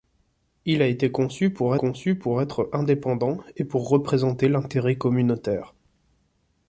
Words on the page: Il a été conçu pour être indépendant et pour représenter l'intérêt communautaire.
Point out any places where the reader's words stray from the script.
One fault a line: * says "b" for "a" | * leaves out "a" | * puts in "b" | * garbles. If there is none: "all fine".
* puts in "conçu pour"